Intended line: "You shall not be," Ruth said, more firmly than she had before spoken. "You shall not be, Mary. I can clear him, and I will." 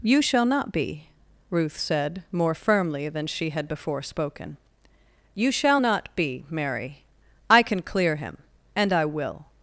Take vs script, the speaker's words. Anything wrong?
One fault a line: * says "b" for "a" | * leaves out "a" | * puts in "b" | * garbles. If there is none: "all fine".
all fine